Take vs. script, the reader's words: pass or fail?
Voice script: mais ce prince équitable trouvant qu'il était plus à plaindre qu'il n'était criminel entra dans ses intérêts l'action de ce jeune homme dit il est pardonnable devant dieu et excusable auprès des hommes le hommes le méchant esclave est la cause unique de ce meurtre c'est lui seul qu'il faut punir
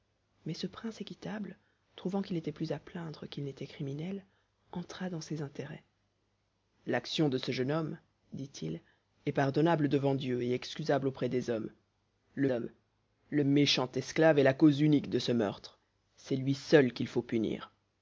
pass